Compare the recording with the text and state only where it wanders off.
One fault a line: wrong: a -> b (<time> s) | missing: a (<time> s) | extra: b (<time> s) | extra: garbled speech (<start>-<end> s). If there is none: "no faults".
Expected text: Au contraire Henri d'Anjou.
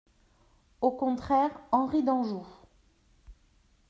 no faults